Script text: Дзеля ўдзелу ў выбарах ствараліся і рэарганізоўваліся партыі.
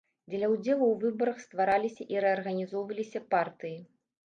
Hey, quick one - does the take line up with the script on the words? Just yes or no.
yes